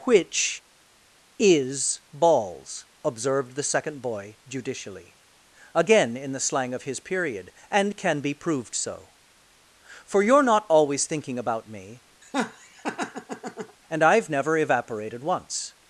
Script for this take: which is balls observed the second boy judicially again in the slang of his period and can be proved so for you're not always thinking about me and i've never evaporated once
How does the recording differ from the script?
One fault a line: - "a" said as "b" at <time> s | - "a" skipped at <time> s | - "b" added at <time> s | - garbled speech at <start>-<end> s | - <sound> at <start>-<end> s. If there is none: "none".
- laugh at 12.2-13.8 s